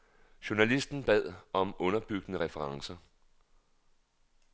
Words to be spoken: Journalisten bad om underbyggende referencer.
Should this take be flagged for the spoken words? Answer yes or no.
no